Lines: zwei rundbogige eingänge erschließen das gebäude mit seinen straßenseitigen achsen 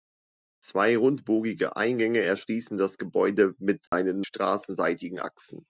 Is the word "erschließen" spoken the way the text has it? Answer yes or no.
yes